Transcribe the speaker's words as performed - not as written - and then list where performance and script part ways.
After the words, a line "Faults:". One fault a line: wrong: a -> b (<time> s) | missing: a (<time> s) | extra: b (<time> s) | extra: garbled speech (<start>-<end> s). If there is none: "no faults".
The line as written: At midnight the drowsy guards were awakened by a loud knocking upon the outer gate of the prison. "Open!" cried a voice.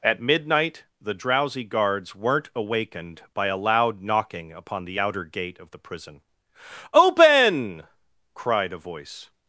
At midnight the drowsy guards weren't awakened by a loud knocking upon the outer gate of the prison. "Open!" cried a voice.
Faults:
wrong: were -> weren't (2.1 s)